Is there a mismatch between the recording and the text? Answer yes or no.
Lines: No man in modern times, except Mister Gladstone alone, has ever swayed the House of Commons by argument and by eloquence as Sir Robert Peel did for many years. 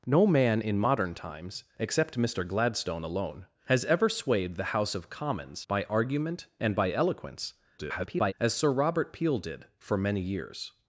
yes